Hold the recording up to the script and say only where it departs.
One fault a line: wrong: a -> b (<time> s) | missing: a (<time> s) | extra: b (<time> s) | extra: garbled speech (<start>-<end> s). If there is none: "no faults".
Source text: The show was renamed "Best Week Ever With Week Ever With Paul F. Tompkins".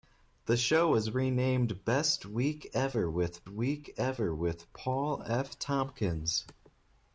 no faults